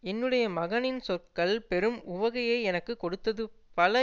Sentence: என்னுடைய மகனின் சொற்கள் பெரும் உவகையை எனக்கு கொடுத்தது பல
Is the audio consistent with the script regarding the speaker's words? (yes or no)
yes